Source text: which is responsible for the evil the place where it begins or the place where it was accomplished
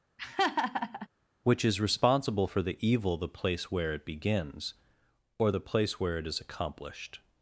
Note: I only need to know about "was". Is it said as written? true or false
false